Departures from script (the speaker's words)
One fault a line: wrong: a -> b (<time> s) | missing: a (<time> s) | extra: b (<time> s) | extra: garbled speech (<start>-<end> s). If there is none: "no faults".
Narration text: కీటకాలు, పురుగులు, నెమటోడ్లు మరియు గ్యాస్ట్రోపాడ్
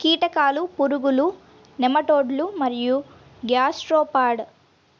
no faults